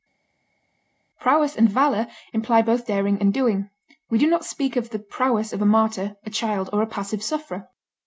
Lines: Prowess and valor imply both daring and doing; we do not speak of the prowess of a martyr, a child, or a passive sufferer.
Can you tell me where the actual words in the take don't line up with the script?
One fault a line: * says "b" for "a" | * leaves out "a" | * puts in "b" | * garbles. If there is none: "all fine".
all fine